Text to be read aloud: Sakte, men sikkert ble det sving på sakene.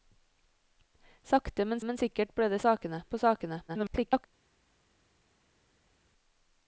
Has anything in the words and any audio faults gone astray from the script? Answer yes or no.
yes